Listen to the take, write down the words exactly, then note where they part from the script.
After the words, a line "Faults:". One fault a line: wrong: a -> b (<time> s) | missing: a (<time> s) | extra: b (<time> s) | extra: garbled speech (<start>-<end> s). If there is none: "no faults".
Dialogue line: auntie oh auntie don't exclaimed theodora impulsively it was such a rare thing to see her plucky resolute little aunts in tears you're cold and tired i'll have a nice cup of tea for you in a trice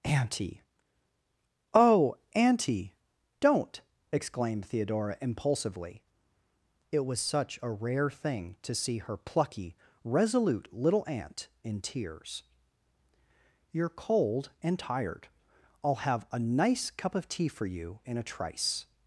auntie oh auntie don't exclaimed theodora impulsively it was such a rare thing to see her plucky resolute little aunt in tears you're cold and tired i'll have a nice cup of tea for you in a trice
Faults:
wrong: aunts -> aunt (11.1 s)